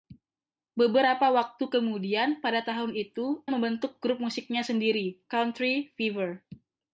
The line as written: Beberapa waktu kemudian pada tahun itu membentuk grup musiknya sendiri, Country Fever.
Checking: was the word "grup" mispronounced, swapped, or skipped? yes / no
no